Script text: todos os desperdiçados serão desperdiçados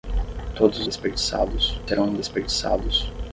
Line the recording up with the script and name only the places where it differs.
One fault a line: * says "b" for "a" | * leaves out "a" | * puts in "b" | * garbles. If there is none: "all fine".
all fine